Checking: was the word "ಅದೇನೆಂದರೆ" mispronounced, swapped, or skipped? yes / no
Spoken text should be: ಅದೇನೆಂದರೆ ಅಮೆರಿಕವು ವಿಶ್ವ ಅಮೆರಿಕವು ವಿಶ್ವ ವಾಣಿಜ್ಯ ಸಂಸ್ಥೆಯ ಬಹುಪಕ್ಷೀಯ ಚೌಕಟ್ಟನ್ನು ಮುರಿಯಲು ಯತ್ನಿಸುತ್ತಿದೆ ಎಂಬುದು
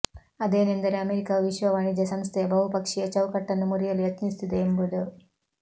no